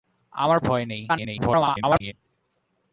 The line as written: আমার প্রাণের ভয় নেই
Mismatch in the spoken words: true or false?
true